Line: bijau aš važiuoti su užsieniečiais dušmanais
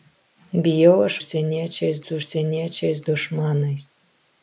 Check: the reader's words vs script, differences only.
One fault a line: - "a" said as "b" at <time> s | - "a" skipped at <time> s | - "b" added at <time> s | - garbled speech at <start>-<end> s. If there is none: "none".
- "važiuoti" said as "užsieniečiais" at 1.2 s